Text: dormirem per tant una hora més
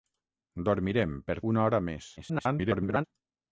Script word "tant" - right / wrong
wrong